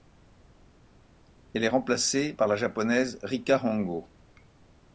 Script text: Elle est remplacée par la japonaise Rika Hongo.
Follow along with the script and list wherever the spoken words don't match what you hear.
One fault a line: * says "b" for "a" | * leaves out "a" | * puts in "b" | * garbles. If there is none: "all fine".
all fine